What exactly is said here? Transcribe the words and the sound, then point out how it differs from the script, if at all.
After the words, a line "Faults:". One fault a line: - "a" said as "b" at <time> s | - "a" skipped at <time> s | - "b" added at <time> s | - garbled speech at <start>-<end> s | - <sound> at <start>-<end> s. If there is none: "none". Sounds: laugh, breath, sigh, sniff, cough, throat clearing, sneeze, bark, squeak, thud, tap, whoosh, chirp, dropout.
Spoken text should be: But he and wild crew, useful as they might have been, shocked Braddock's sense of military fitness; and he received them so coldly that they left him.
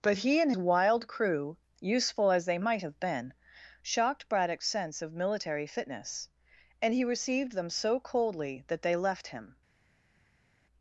But he and wild crew, useful as they might have been, shocked Braddock's sense of military fitness; and he received them so coldly that they left him.
Faults:
none